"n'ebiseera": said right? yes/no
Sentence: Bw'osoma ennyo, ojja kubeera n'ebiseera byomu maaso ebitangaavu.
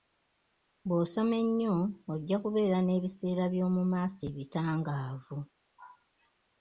yes